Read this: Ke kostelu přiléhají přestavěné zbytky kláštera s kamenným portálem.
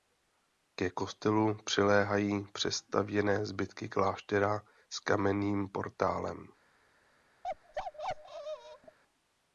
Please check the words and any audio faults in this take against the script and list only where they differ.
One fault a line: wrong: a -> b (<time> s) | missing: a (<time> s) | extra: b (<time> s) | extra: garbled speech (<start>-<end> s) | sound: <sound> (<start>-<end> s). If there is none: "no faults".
sound: bark (7.4-9.0 s)